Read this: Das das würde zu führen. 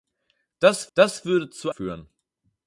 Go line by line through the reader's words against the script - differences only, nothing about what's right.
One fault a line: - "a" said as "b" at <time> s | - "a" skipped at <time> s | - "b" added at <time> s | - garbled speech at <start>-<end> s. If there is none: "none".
none